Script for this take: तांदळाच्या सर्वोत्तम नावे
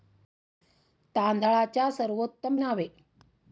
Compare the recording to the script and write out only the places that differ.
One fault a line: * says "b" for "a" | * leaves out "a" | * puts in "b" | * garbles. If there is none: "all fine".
all fine